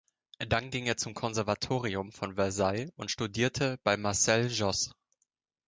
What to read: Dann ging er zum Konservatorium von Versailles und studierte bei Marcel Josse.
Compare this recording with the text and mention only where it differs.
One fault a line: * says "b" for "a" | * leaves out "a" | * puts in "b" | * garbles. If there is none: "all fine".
all fine